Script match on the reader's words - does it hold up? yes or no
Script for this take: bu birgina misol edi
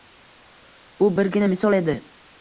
yes